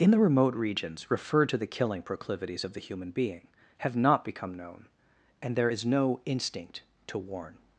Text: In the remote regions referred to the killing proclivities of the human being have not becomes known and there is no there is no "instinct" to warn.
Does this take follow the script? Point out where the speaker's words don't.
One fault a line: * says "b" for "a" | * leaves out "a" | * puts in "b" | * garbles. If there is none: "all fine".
* says "become" for "becomes"
* leaves out "there is no"